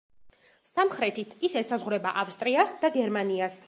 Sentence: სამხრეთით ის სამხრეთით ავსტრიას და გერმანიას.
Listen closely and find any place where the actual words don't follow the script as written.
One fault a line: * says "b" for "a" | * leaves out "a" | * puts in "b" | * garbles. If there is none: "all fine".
* says "ესაზღვრება" for "სამხრეთით"